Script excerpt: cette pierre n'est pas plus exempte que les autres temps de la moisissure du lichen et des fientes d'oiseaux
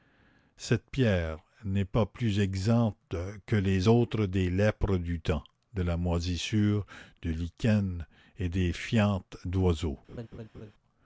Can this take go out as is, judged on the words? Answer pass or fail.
fail